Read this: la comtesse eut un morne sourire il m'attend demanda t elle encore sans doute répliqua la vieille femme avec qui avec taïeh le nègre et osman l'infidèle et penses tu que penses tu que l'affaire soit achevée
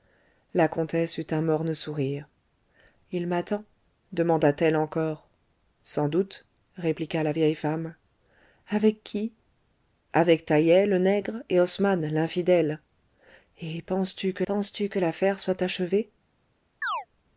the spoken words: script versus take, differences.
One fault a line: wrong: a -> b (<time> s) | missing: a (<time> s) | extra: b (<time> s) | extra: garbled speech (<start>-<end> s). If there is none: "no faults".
no faults